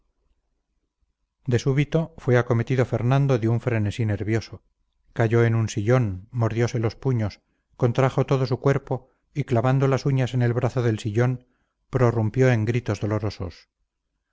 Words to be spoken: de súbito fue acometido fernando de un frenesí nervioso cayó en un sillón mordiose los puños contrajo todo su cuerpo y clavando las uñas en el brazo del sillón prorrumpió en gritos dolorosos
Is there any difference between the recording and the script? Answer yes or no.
no